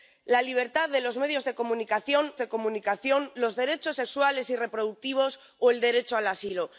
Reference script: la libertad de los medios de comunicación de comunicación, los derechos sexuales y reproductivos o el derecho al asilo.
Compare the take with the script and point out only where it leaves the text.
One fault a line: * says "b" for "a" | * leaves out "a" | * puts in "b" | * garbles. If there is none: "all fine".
all fine